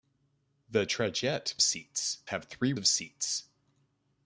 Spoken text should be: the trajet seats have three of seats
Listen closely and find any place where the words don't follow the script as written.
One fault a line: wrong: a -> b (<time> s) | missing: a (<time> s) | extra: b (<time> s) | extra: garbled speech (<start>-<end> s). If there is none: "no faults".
no faults